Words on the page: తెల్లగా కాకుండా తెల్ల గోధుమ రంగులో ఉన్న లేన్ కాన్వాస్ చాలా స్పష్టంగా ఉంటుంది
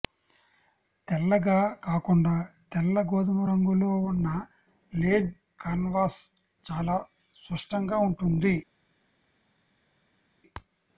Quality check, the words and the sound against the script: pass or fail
pass